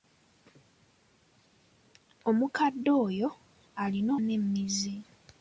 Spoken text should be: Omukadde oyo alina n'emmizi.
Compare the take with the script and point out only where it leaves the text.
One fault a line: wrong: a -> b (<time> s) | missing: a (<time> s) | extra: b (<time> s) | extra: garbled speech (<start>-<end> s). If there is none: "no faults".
no faults